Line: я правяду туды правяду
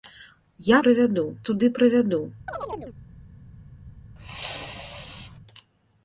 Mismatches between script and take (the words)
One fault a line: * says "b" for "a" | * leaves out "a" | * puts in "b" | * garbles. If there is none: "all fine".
all fine